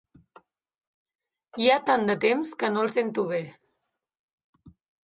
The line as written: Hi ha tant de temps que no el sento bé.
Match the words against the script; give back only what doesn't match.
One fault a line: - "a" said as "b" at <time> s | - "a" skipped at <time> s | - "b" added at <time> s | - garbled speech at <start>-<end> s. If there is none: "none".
none